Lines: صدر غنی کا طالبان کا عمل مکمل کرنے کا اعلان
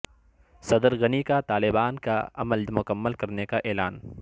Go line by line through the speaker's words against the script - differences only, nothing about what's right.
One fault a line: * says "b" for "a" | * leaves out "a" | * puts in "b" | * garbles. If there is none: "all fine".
all fine